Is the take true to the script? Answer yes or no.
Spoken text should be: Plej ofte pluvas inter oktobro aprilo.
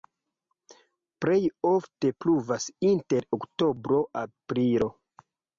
yes